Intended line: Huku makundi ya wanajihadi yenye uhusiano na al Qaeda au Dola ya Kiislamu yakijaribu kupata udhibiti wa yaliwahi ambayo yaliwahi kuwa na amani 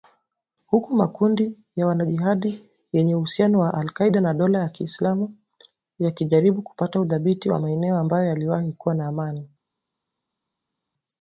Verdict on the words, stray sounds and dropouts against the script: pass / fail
fail